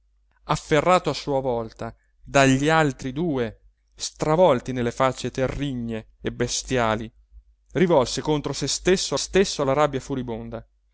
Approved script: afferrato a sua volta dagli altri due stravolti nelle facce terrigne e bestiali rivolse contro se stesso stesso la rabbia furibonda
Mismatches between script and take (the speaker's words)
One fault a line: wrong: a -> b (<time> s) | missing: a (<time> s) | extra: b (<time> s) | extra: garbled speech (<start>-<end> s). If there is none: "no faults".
no faults